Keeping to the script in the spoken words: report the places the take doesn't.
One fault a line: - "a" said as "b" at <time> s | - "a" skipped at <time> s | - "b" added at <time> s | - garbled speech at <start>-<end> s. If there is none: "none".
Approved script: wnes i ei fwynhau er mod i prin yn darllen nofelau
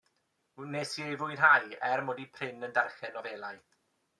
none